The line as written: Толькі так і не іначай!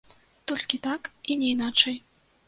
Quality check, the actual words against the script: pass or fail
pass